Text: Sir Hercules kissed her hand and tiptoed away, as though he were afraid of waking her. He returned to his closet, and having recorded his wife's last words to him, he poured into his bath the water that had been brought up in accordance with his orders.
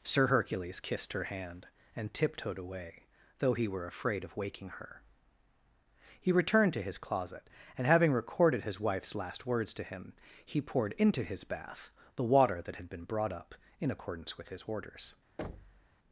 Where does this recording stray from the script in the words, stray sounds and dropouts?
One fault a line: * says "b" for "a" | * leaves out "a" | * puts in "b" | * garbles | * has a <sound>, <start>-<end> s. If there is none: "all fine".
* leaves out "as"
* has a thud, 15.4-15.9 s